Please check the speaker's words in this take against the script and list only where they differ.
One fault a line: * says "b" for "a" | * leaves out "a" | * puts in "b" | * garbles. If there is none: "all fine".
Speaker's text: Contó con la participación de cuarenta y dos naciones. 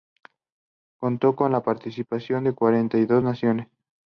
all fine